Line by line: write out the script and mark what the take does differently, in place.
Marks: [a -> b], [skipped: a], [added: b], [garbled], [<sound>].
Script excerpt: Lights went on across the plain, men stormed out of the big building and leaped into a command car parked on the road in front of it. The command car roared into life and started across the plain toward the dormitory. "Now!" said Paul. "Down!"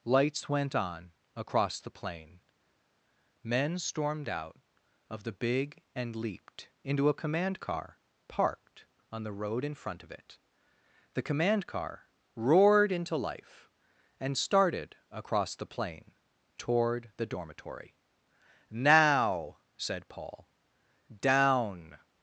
Lights went on across the plain, men stormed out of the big [skipped: building] and leaped into a command car parked on the road in front of it. The command car roared into life and started across the plain toward the dormitory. "Now!" said Paul. "Down!"